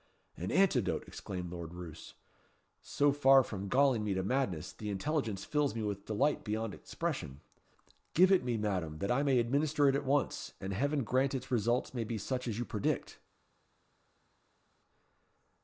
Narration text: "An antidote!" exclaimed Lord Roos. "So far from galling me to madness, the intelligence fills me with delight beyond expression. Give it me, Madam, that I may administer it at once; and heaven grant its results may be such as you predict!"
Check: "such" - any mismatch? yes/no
no